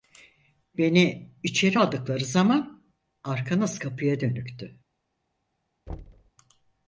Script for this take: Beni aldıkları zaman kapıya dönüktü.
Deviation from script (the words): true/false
true